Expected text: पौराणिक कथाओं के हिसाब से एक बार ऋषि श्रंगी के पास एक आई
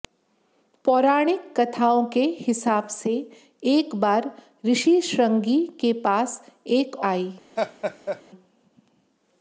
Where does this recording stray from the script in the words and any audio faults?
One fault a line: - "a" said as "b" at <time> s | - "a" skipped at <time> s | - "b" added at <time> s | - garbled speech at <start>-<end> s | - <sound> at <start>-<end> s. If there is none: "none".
- laugh at 7.6-8.2 s